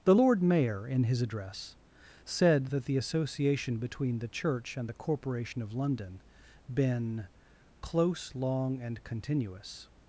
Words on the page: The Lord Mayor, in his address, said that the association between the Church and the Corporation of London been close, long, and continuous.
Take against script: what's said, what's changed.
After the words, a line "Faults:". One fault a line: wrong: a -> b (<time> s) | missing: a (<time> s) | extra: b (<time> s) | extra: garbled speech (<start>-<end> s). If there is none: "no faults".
The Lord Mayor, in his address, said that the association between the Church and the Corporation of London been close, long, and continuous.
Faults:
no faults